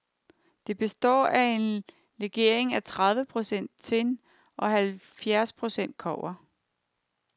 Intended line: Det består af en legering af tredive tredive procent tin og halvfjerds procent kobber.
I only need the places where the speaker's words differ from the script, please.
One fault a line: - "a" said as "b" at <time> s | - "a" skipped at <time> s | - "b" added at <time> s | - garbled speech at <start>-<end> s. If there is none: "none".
- "tredive" skipped at 3.2 s